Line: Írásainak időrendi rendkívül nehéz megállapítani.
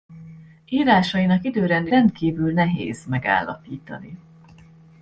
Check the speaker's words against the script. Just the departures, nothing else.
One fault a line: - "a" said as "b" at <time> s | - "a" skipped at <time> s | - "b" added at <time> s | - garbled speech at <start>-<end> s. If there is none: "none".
none